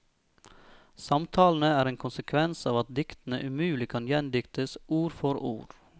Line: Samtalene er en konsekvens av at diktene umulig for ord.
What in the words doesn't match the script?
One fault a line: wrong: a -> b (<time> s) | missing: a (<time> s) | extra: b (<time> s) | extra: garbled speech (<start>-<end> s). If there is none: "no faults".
extra: kan gjendiktes ord (3.9 s)